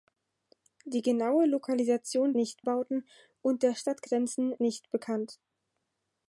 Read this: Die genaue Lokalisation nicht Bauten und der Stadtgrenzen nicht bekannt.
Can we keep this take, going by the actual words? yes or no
yes